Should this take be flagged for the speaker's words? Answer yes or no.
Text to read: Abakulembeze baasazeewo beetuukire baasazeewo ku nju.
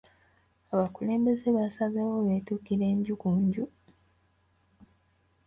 yes